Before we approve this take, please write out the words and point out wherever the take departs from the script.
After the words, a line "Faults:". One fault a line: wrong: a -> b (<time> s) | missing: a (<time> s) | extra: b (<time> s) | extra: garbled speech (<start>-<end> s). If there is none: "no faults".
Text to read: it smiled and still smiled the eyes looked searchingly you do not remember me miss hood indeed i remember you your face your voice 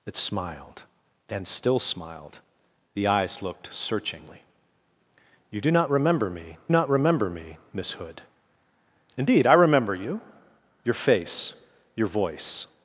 it smiled and still smiled the eyes looked searchingly you do not remember me not remember me miss hood indeed i remember you your face your voice
Faults:
extra: not remember me (6.7 s)